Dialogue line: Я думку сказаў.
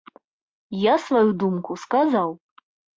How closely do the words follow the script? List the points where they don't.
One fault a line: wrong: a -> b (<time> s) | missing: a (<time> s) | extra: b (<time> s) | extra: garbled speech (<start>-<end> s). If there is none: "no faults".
extra: сваю (1.1 s)